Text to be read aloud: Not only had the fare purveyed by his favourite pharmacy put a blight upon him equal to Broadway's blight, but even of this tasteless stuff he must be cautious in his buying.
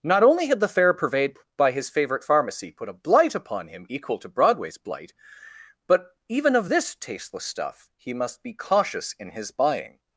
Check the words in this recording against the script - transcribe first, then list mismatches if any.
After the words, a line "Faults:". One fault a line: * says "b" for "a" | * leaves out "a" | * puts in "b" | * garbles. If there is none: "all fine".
Not only had the fare purveyed by his favourite pharmacy put a blight upon him equal to Broadway's blight, but even of this tasteless stuff he must be cautious in his buying.
Faults:
all fine